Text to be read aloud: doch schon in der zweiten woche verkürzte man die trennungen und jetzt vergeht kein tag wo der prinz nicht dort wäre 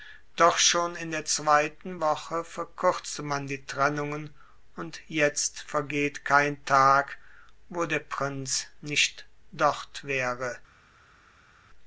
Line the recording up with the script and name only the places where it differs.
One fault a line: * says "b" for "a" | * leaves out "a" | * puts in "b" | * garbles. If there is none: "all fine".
all fine